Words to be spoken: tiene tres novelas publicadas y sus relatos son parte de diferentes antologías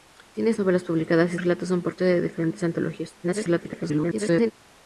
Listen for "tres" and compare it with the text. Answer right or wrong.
wrong